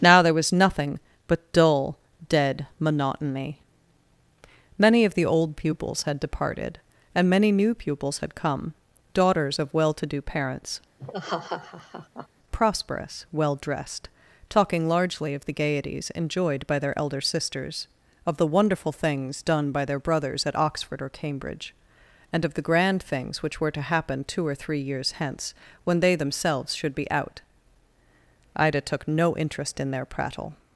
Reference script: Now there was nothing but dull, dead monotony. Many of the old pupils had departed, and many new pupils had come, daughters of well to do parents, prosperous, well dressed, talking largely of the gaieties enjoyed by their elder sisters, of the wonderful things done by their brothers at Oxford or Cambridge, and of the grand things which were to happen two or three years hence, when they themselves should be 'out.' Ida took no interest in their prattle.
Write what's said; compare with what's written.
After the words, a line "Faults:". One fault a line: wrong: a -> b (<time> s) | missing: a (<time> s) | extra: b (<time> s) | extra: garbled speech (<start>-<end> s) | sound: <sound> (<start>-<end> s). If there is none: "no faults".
Now there was nothing but dull, dead monotony. Many of the old pupils had departed, and many new pupils had come, daughters of well to do parents, prosperous, well dressed, talking largely of the gaieties enjoyed by their elder sisters, of the wonderful things done by their brothers at Oxford or Cambridge, and of the grand things which were to happen two or three years hence, when they themselves should be 'out.' Ida took no interest in their prattle.
Faults:
sound: laugh (11.0-12.3 s)